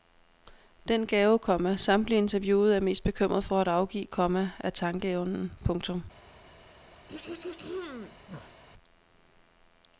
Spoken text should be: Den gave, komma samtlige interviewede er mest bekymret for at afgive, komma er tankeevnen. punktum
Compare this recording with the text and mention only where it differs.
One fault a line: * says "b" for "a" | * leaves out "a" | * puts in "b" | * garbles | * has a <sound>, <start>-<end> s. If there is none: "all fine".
* has a throat clearing, 7.1-8.6 s